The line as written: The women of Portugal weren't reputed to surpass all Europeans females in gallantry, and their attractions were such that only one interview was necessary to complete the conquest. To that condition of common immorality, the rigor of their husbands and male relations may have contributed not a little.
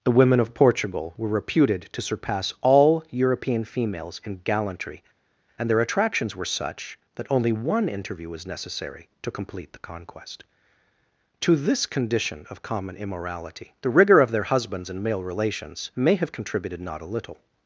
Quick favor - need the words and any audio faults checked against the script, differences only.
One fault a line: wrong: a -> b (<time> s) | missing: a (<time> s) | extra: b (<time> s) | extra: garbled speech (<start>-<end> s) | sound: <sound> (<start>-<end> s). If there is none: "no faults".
wrong: weren't -> were (1.1 s)
wrong: Europeans -> European (3.1 s)
wrong: that -> this (11.6 s)